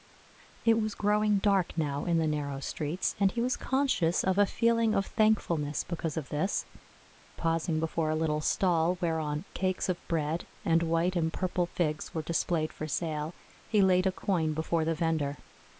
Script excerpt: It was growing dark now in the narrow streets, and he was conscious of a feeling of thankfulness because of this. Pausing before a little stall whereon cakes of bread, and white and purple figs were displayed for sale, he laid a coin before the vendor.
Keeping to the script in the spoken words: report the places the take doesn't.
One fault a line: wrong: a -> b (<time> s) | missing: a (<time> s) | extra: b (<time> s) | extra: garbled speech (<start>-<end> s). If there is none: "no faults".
no faults